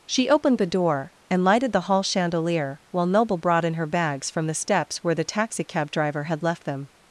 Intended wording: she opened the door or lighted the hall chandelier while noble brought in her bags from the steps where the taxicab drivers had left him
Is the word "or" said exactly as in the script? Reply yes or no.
no